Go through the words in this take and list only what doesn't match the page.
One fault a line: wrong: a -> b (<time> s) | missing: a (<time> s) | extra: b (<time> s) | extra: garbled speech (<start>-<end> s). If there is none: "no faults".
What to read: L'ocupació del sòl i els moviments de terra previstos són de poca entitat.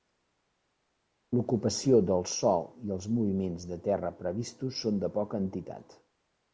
no faults